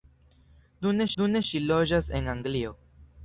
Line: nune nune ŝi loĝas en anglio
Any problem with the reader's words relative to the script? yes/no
no